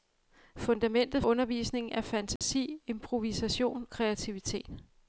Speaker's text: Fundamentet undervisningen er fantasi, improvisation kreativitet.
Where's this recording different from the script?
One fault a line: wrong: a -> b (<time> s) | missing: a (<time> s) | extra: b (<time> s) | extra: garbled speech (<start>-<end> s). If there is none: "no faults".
no faults